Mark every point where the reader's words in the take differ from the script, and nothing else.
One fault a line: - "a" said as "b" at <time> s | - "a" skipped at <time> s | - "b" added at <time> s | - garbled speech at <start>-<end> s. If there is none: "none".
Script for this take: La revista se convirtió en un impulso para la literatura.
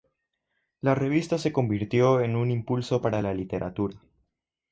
none